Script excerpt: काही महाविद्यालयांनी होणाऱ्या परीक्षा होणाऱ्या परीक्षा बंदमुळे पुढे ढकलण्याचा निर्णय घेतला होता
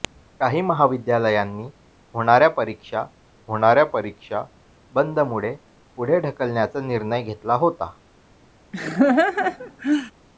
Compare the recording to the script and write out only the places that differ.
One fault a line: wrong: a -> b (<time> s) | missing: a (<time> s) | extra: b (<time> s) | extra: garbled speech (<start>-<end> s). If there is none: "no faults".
no faults